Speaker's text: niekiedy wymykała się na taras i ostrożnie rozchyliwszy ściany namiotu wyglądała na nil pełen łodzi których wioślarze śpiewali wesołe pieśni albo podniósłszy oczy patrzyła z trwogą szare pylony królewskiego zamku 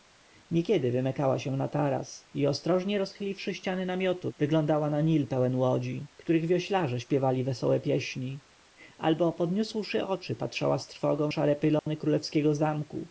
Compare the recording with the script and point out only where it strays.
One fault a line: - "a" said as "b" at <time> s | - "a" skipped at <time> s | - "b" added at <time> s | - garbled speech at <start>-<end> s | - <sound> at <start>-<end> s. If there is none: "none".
- dropout at 11.8-11.9 s